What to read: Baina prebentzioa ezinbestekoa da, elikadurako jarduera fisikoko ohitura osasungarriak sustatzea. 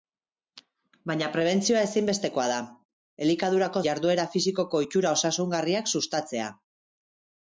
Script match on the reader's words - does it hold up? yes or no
yes